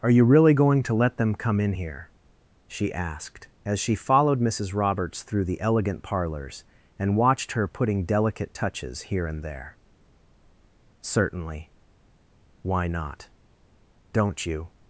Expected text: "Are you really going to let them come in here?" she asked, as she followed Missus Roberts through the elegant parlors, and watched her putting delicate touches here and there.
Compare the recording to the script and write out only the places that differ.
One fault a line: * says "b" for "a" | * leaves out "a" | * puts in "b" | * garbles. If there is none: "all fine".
* puts in "Certainly why not Don't you"